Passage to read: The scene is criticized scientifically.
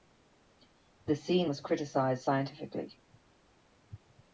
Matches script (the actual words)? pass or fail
fail